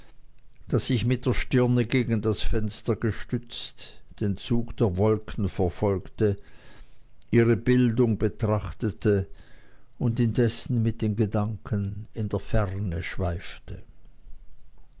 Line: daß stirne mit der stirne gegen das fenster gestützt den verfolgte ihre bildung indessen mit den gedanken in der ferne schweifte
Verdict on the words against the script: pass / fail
fail